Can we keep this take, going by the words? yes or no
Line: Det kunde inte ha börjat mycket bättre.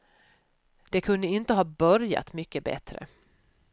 yes